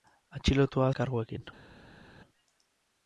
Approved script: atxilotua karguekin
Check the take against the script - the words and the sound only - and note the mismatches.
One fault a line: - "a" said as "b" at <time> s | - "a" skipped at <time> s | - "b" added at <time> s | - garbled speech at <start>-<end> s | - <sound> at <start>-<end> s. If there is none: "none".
none